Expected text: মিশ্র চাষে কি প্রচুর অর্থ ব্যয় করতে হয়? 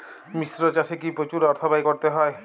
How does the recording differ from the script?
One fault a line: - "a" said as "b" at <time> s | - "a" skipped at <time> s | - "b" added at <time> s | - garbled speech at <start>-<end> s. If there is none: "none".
none